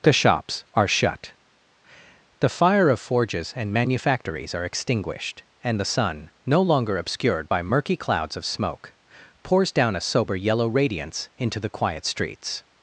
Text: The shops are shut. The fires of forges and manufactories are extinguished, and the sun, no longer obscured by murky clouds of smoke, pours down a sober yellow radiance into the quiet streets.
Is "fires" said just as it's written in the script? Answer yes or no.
no